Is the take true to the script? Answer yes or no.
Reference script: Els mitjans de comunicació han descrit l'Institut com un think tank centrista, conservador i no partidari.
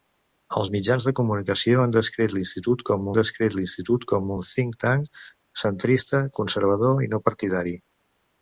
no